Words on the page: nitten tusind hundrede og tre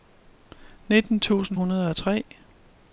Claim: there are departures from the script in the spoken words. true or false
false